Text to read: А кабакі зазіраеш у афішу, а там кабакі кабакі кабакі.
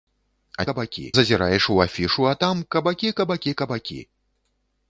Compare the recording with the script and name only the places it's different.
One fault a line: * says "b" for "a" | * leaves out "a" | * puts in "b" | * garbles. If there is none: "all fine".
all fine